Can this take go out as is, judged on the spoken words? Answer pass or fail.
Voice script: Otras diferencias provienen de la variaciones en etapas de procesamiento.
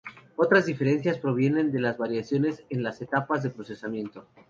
fail